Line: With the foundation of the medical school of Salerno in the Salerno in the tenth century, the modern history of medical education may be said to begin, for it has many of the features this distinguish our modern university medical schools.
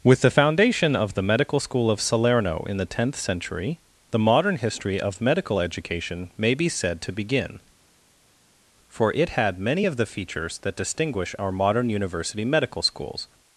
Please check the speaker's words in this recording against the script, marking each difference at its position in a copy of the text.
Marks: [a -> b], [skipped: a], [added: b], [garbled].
With the foundation of the medical school of Salerno in the [skipped: Salerno in the] tenth century, the modern history of medical education may be said to begin, for it [has -> had] many of the features [this -> that] distinguish our modern university medical schools.